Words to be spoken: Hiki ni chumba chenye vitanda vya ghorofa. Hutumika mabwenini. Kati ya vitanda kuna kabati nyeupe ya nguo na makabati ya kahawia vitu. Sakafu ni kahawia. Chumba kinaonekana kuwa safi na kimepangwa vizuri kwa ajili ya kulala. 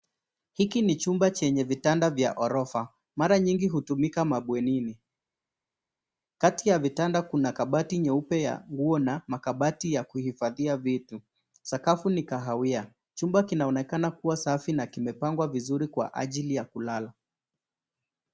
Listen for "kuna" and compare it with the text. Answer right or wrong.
right